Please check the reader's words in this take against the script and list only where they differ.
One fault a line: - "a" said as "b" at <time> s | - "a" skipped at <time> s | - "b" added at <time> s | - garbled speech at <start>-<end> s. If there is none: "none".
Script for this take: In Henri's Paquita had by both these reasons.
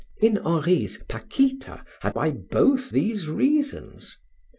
none